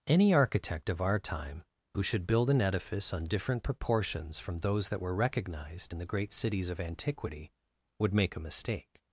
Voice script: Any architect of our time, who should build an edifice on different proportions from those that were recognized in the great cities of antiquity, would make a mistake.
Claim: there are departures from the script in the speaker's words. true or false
false